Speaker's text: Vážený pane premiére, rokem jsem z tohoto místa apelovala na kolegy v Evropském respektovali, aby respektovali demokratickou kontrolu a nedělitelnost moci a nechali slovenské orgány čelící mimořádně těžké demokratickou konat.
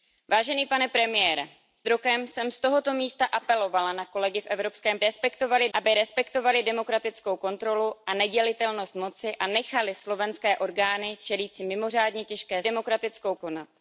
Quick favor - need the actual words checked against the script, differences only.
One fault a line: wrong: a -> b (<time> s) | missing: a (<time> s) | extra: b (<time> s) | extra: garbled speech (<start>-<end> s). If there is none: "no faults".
no faults